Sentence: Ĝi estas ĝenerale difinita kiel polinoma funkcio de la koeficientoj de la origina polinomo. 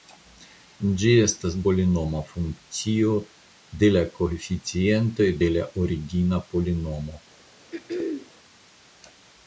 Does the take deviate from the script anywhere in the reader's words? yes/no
yes